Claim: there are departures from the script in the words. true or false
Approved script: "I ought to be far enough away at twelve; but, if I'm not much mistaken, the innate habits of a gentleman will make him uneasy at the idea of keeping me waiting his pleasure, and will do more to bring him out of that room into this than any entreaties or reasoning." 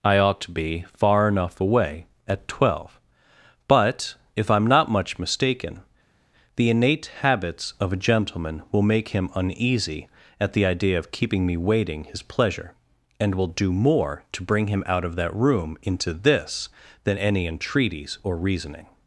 false